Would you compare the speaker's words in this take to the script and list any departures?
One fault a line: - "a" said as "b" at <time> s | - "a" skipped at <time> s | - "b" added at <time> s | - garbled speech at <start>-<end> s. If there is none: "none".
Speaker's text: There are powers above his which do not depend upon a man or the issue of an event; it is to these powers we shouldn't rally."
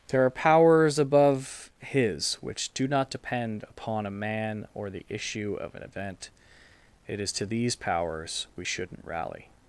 none